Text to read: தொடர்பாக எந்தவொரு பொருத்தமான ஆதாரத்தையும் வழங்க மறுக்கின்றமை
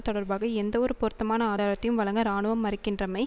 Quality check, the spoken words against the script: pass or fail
fail